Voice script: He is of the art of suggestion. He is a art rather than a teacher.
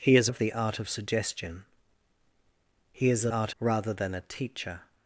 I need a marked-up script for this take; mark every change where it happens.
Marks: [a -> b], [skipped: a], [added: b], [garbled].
He is of the art of suggestion. He is a art rather than a teacher.